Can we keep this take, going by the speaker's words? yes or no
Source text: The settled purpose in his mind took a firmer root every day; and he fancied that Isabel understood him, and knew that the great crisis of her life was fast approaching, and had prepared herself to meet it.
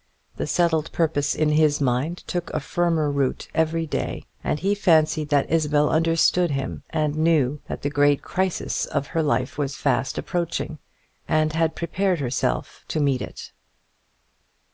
yes